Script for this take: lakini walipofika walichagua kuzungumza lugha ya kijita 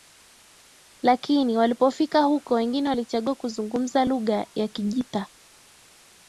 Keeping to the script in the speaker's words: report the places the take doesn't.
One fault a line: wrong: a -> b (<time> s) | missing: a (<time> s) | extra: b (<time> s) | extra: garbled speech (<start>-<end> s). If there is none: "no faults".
extra: huko wengine (2.2 s)